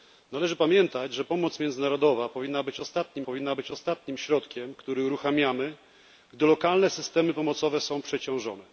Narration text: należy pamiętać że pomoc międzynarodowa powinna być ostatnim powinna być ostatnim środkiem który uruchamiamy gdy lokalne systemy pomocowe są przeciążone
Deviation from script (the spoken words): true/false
false